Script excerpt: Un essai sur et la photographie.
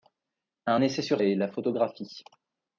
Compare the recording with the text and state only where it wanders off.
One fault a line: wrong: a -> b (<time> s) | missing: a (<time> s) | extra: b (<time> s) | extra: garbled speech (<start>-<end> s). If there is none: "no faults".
no faults